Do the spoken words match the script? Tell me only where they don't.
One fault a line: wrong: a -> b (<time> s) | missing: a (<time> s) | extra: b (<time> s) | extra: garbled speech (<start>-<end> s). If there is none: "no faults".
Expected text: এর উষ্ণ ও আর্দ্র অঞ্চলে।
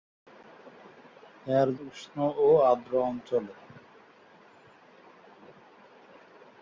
no faults